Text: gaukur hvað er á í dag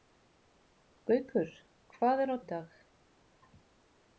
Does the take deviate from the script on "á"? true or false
false